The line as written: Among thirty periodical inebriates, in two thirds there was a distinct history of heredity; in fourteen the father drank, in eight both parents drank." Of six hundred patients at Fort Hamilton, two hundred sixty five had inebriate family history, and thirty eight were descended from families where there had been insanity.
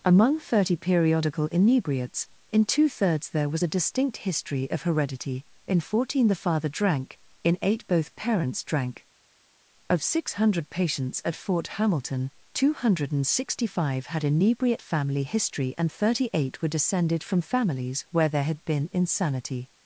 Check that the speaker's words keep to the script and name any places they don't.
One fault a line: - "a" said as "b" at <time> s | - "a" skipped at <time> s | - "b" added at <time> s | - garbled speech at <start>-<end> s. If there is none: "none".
none